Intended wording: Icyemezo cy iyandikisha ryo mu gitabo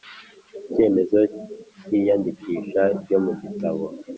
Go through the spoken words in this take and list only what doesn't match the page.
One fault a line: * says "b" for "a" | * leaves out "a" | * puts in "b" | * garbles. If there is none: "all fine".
all fine